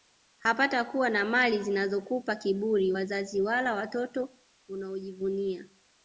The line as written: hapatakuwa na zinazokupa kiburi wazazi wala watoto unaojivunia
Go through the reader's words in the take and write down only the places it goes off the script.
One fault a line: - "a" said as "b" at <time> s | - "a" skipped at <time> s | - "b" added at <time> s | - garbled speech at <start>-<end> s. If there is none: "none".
- "mali" added at 1.2 s